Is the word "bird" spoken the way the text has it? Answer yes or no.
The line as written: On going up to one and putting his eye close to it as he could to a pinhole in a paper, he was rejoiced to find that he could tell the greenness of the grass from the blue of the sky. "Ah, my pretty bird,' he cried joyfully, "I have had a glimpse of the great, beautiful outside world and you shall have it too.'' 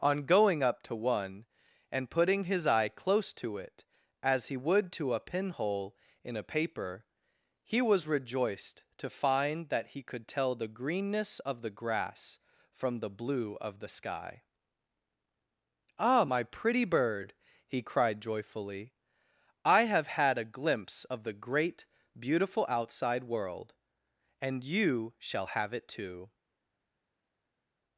yes